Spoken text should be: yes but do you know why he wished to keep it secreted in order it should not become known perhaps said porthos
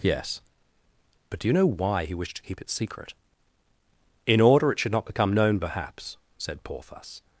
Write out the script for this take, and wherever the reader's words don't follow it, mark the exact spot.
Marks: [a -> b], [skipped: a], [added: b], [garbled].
yes but do you know why he wished to keep it [secreted -> secret] in order it should not become known perhaps said porthos